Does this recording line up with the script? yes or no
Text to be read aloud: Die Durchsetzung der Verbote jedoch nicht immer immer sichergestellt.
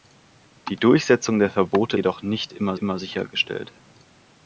yes